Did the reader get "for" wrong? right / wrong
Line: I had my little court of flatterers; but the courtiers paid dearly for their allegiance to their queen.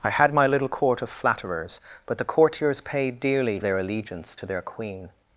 wrong